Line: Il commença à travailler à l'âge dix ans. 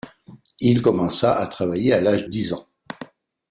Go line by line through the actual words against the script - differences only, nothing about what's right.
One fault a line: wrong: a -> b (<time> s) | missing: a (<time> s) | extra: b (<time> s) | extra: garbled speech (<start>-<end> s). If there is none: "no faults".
no faults